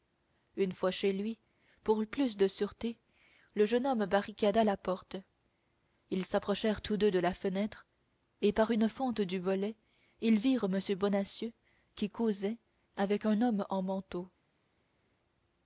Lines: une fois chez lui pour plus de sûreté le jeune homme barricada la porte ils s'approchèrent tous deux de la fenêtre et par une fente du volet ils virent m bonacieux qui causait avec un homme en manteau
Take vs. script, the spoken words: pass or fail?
pass